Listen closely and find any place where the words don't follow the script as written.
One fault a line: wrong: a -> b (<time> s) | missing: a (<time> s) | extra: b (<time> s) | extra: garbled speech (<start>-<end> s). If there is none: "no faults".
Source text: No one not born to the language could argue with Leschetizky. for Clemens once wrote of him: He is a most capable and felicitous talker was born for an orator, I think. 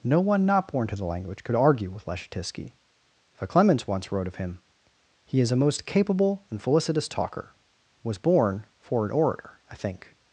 no faults